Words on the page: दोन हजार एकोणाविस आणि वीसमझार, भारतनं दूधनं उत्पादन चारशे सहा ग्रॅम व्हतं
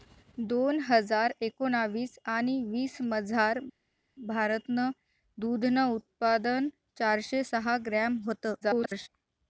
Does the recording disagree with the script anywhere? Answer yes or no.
yes